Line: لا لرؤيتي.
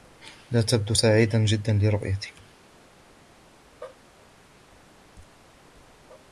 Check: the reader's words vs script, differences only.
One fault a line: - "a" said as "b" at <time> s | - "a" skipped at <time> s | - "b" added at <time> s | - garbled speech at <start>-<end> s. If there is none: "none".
- "تبدو سعيدا جدا" added at 0.6 s